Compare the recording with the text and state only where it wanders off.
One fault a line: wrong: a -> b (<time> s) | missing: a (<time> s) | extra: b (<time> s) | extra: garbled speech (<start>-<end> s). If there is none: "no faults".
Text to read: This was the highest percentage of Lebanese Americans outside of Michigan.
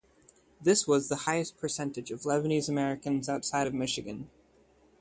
no faults